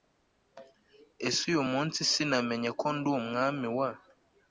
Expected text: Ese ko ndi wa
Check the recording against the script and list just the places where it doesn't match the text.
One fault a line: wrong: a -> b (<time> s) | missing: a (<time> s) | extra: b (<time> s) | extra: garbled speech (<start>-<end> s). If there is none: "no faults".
extra: uyu munsi sinamenye (1.5 s)
extra: umwami (3.2 s)